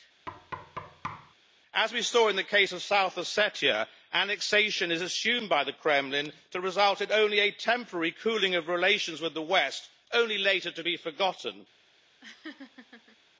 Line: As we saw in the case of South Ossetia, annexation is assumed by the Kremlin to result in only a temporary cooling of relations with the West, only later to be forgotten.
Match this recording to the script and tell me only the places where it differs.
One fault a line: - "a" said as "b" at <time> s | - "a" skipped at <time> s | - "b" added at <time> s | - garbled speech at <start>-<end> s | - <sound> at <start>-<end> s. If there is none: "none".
- thud at 0.3-1.3 s
- laugh at 12.2-13.2 s